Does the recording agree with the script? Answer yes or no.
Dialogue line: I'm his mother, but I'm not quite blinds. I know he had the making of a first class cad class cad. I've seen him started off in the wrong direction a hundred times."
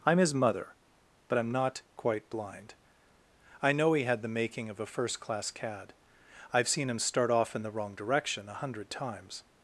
no